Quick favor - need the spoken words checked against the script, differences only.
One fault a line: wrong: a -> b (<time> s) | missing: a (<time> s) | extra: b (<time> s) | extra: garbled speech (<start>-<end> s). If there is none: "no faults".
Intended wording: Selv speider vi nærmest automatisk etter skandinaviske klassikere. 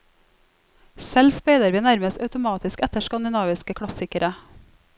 no faults